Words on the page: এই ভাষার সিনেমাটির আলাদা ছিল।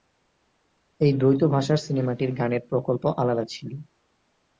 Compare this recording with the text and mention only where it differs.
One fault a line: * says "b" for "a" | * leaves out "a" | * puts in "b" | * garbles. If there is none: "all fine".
* puts in "দ্বৈত"
* puts in "গানের প্রকল্প"